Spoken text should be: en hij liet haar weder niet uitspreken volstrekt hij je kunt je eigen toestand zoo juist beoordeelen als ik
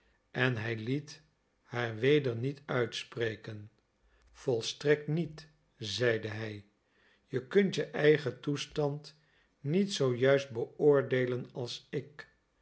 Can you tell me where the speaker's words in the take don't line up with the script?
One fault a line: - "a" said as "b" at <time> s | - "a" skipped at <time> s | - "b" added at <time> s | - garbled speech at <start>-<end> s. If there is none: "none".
- "niet zeide" added at 5.1 s
- "niet" added at 9.6 s